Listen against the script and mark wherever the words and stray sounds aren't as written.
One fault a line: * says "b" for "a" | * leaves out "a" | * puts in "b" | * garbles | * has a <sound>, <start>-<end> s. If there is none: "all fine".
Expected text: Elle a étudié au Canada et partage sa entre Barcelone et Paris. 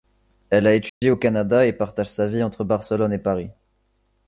* has a dropout, 0.9-1.0 s
* puts in "vie"